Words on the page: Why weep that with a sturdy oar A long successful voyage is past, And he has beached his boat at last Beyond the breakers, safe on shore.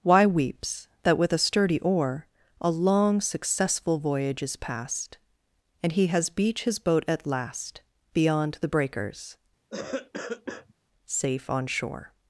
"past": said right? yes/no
yes